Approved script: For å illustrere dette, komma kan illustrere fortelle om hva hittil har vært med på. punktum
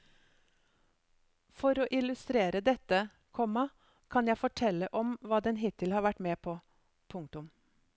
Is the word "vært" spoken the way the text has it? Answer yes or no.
yes